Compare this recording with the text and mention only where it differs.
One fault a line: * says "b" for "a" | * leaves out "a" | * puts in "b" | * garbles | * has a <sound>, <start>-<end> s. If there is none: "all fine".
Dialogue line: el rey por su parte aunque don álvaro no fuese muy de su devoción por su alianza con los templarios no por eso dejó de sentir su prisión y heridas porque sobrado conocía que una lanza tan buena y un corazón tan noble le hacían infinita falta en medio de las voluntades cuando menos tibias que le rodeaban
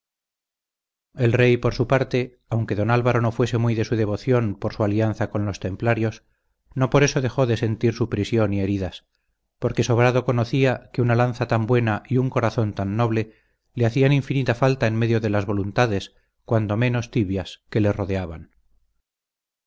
all fine